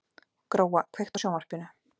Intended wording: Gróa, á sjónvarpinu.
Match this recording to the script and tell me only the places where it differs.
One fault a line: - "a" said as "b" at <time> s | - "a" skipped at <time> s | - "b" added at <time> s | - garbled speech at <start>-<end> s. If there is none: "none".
- "kveiktu" added at 1.0 s